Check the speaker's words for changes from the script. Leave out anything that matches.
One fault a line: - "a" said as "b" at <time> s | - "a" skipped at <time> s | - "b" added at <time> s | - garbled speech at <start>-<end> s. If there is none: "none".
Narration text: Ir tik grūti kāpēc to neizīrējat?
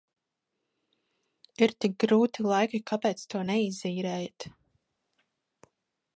- "laiki" added at 2.5 s